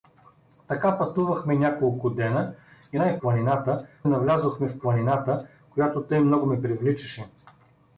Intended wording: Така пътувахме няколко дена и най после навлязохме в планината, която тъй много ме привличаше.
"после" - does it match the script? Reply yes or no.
no